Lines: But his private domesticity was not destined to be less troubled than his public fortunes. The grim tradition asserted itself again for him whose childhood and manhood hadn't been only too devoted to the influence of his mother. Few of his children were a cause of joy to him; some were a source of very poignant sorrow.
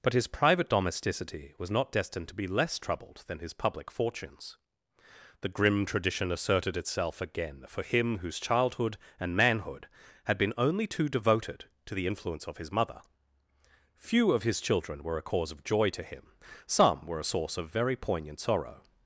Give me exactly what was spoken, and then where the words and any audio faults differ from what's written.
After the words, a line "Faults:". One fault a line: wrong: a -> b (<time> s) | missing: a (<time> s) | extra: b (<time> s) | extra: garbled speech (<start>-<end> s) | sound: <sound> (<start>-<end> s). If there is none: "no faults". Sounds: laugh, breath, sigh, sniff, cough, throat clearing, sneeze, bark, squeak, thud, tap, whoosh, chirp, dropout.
But his private domesticity was not destined to be less troubled than his public fortunes. The grim tradition asserted itself again for him whose childhood and manhood had been only too devoted to the influence of his mother. Few of his children were a cause of joy to him; some were a source of very poignant sorrow.
Faults:
wrong: hadn't -> had (10.2 s)